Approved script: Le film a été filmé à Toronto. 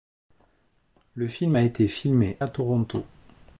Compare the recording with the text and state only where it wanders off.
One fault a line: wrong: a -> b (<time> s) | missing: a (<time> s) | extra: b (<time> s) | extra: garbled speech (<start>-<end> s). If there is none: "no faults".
no faults